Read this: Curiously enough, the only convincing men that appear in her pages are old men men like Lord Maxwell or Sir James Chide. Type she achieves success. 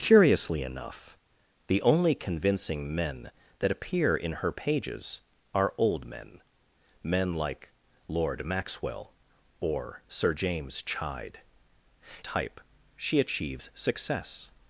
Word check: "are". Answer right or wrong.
right